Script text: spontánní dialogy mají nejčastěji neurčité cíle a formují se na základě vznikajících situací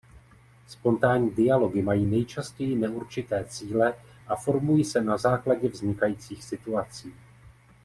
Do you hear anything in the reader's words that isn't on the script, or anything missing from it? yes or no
no